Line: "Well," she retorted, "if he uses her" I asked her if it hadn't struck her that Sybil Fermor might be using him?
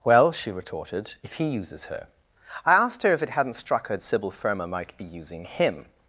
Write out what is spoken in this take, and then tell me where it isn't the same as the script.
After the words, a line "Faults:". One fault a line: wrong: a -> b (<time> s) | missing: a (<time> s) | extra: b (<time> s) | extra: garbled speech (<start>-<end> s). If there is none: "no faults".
"Well," she retorted, "if he uses her" I asked her if it hadn't struck her Sybil Fermor might be using him?
Faults:
missing: that (4.0 s)